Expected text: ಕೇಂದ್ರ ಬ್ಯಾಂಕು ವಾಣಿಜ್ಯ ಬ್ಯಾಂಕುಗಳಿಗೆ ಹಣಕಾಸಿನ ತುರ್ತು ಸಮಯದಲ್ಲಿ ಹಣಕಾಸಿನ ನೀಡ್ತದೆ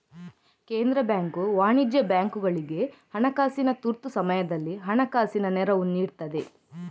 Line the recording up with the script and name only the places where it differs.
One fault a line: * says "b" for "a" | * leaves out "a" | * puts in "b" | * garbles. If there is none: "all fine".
* puts in "ನೆರವು"